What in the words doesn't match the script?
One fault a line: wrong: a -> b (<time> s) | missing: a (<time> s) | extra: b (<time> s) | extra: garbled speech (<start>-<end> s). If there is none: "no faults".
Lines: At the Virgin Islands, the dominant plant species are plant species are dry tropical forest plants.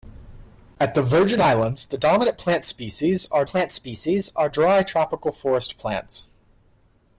no faults